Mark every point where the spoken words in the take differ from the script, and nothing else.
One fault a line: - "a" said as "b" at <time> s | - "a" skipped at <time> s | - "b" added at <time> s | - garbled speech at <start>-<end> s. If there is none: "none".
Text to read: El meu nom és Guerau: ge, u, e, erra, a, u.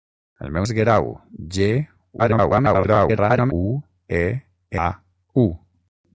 - "nom" skipped at 0.6 s
- garbled speech at 2.2-3.5 s
- "erra" skipped at 4.2 s